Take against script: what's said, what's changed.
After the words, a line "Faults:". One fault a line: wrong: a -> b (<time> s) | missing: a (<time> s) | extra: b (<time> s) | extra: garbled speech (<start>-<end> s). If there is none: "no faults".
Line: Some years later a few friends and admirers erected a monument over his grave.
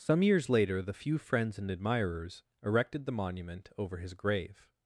Some years later the few friends and admirers erected the monument over his grave.
Faults:
wrong: a -> the (0.8 s)
wrong: a -> the (3.0 s)